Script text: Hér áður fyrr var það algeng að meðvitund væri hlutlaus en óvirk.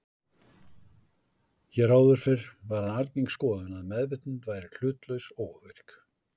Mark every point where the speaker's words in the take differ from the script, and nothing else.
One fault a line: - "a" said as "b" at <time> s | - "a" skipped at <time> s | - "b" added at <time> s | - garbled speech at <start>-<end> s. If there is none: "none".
- "skoðun" added at 3.3 s
- "en" said as "og" at 5.4 s